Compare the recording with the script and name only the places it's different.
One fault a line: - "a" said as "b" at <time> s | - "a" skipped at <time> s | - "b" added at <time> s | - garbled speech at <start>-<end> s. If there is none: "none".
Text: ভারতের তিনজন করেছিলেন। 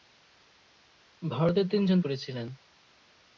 none